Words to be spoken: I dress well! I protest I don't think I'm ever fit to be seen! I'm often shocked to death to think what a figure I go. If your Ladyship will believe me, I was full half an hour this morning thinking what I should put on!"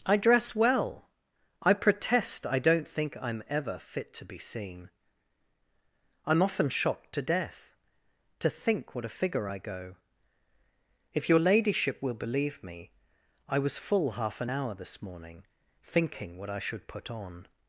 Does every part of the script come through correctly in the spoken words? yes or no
yes